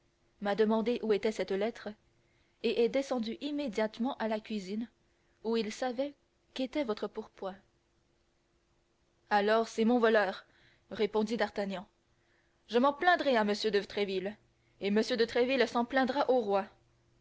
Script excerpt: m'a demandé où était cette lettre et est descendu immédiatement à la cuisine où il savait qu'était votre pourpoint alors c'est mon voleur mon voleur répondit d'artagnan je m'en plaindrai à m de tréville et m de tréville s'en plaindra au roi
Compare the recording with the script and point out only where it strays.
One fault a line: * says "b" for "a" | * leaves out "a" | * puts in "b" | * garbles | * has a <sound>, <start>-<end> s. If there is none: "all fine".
* leaves out "mon voleur"